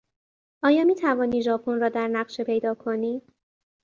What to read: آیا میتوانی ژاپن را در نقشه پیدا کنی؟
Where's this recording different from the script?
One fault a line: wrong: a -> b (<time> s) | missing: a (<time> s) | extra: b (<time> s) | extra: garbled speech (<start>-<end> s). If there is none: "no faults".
no faults